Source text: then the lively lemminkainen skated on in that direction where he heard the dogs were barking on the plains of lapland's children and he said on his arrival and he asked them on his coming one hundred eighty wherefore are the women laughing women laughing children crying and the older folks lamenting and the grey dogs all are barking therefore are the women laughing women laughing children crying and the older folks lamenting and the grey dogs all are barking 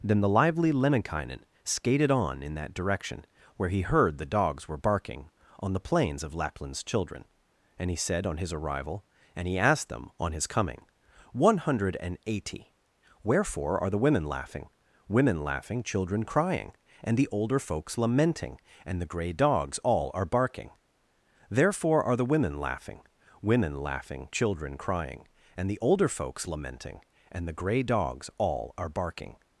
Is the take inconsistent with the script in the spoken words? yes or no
no